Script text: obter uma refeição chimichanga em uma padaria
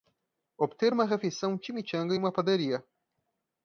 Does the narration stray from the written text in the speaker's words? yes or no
no